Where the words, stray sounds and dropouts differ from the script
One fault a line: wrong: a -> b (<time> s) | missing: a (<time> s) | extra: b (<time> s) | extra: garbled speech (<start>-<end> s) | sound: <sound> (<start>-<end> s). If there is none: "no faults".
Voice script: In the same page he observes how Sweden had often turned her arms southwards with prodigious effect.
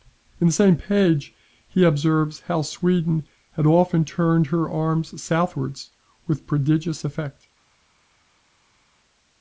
no faults